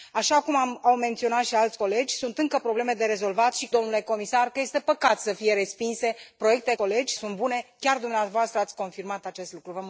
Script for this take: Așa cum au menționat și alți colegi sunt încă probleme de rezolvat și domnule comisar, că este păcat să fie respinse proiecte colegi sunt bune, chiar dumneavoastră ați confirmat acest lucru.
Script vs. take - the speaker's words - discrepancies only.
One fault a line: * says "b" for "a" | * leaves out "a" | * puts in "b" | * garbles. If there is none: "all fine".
all fine